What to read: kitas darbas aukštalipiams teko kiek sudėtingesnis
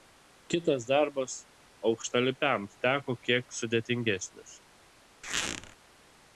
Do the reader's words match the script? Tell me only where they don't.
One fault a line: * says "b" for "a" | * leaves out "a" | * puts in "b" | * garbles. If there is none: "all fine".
all fine